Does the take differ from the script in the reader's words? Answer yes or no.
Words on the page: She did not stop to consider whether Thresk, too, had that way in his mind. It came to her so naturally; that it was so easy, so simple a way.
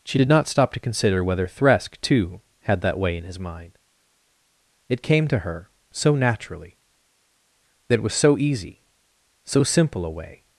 no